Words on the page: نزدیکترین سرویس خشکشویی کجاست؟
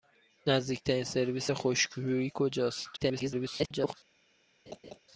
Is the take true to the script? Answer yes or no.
no